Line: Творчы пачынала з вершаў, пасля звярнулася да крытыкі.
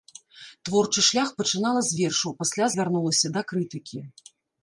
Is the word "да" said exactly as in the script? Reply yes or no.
yes